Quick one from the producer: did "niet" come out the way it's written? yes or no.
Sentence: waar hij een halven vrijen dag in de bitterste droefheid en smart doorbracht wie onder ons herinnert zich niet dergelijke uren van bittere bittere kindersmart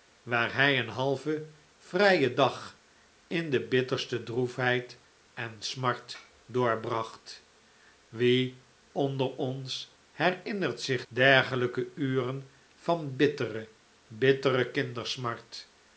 no